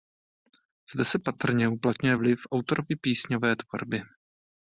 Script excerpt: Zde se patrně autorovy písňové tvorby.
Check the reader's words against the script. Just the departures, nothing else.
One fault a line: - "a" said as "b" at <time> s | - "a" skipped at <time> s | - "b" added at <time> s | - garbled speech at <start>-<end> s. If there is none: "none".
- "uplatňuje vliv" added at 1.7 s